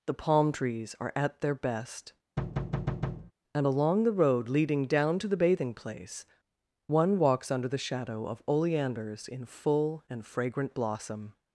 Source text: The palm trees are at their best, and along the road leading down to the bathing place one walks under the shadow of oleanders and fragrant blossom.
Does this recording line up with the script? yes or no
no